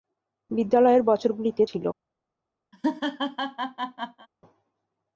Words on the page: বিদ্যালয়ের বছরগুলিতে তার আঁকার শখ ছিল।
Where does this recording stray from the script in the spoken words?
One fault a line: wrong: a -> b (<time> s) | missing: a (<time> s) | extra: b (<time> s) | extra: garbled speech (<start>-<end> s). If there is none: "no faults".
missing: তার আঁকার শখ (1.6 s)